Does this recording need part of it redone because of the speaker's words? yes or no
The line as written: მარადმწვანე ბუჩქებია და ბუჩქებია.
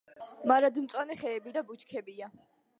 yes